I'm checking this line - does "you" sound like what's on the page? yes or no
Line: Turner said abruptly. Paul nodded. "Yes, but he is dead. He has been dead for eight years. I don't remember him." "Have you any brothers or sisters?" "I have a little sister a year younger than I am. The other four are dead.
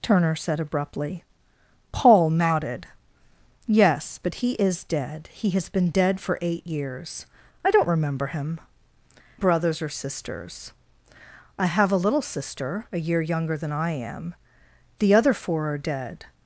no